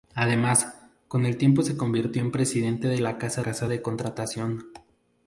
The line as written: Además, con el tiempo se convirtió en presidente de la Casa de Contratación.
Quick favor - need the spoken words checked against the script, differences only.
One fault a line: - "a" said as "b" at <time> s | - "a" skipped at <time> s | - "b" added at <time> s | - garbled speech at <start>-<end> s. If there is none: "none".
- "Casa" added at 3.4 s